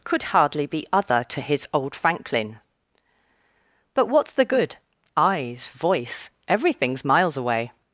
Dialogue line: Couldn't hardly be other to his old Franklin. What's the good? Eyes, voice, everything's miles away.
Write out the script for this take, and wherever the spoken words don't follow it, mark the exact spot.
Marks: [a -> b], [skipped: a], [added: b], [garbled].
[Couldn't -> Could] hardly be other to his old Franklin. [added: But] What's the good? Eyes, voice, everything's miles away.